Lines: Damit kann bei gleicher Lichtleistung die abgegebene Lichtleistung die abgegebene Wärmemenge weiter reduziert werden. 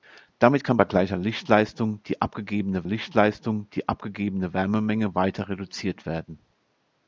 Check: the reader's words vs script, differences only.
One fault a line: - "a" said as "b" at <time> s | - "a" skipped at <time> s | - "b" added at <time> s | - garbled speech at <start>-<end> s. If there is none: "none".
none